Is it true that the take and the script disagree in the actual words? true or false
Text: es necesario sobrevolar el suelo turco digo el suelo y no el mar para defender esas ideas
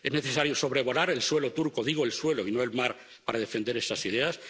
false